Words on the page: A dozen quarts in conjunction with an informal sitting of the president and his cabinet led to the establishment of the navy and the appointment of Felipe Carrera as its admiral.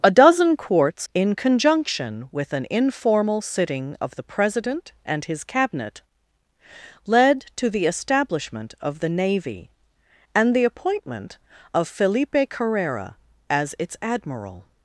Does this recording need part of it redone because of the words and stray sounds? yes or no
no